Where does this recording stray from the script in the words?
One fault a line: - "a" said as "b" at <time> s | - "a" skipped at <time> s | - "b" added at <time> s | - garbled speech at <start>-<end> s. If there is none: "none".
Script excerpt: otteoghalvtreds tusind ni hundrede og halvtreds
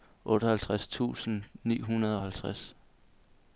none